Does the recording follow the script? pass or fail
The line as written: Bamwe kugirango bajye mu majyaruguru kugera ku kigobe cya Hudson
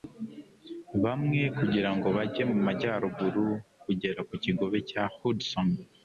pass